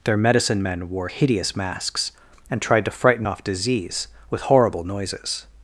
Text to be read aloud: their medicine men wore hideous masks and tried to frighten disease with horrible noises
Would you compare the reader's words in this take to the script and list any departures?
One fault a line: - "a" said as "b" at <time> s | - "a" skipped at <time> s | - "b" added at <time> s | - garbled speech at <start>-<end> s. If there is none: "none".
- "off" added at 3.2 s